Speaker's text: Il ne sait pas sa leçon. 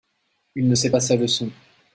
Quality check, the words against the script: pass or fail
pass